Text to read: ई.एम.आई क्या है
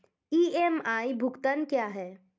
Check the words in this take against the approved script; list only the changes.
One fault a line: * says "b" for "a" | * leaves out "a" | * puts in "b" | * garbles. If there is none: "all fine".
* puts in "भुगतान"